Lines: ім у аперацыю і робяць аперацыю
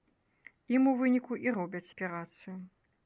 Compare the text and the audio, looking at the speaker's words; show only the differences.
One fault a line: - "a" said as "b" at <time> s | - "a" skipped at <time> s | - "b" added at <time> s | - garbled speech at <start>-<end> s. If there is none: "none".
- "аперацыю" said as "выніку" at 1.0 s